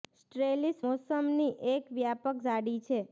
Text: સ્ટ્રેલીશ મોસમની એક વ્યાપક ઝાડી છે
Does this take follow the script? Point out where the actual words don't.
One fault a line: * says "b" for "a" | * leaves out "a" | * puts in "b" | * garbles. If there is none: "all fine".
all fine